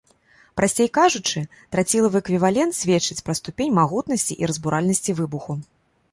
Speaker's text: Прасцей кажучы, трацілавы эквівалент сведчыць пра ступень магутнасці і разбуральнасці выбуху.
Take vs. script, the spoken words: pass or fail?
pass